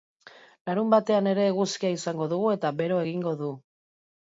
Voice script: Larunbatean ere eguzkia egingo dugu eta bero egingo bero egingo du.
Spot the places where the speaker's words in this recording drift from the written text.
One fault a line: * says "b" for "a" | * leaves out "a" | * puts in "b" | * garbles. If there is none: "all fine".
* says "izango" for "egingo"
* leaves out "bero egingo"